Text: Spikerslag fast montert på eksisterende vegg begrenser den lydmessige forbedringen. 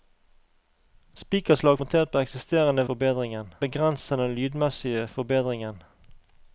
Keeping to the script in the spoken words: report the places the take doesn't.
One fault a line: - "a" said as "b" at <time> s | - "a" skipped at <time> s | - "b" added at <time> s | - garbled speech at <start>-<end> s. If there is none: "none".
- "fast" skipped at 1.8 s
- "vegg" said as "forbedringen" at 2.9 s